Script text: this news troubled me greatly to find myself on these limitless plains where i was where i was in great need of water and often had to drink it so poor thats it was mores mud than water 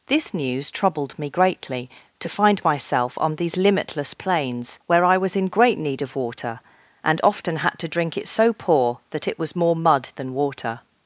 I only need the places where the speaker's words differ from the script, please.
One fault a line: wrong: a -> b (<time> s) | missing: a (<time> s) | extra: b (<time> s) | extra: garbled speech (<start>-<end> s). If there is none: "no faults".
missing: where i was (5.3 s)
wrong: thats -> that (9.1 s)
wrong: mores -> more (9.6 s)